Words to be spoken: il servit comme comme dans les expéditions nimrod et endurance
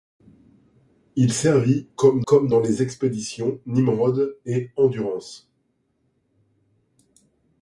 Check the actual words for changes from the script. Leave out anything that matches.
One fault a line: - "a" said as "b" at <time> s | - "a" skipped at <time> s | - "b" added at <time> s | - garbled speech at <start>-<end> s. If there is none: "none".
none